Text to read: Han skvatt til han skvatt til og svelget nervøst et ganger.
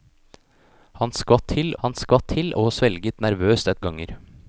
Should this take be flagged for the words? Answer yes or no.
no